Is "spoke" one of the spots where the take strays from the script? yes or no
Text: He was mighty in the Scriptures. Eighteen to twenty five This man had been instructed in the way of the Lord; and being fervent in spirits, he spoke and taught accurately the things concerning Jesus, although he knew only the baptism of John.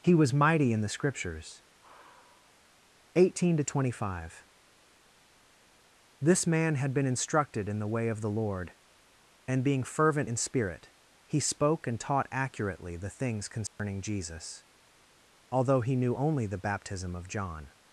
no